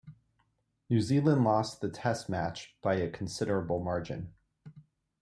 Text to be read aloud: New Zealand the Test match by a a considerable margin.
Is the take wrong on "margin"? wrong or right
right